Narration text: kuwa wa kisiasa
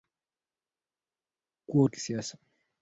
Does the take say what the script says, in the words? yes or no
yes